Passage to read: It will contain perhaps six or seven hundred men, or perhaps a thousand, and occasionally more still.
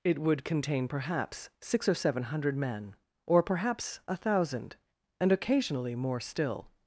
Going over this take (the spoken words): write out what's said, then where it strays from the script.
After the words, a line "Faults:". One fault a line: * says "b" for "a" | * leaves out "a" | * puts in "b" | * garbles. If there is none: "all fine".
It would contain perhaps six or seven hundred men, or perhaps a thousand, and occasionally more still.
Faults:
* says "would" for "will"